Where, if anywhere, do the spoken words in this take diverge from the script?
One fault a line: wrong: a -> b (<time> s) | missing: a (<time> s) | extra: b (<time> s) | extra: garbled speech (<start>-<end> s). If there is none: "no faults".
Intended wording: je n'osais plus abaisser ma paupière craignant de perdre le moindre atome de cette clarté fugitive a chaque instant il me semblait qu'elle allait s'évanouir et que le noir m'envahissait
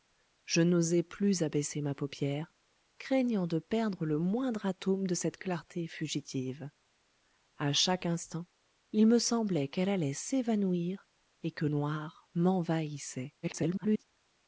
missing: le (11.7 s)
extra: garbled speech (13.4-14.0 s)